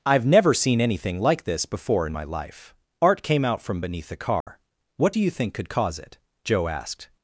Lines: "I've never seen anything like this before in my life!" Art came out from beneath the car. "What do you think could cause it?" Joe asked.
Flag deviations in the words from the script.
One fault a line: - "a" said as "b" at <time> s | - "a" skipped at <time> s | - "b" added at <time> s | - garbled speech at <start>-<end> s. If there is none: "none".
none